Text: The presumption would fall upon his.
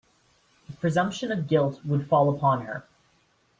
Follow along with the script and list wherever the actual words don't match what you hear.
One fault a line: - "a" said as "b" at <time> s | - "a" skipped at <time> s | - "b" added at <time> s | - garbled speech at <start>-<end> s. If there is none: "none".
- "of guilt" added at 1.3 s
- "his" said as "her" at 2.7 s